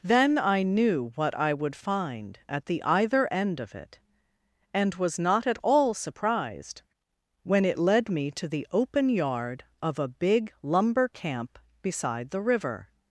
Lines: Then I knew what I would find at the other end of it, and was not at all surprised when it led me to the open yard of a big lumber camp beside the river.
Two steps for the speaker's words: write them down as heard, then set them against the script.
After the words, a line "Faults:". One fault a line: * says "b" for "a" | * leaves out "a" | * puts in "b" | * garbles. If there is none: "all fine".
Then I knew what I would find at the either end of it, and was not at all surprised when it led me to the open yard of a big lumber camp beside the river.
Faults:
* says "either" for "other"